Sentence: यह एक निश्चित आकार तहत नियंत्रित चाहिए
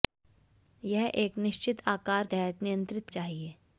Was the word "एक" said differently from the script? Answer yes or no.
no